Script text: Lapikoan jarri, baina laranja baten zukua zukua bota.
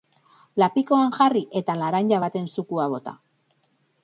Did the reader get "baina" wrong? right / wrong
wrong